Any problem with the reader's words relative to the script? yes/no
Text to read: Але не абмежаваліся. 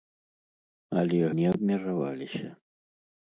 no